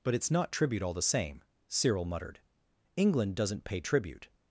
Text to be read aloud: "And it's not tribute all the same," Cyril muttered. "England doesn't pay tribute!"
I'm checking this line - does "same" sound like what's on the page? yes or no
yes